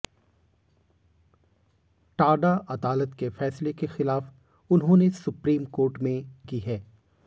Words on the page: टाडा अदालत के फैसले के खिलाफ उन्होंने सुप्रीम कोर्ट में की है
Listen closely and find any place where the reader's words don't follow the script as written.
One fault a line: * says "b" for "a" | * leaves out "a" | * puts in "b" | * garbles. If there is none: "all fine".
all fine